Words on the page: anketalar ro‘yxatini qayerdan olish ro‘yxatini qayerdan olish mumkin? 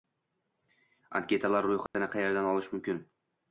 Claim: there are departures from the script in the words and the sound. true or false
true